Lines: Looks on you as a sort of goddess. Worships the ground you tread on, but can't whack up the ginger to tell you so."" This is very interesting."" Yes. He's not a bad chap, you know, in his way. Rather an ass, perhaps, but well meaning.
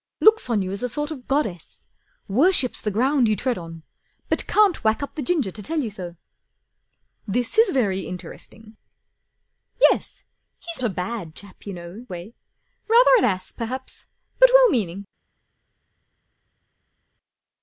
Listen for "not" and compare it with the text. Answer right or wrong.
wrong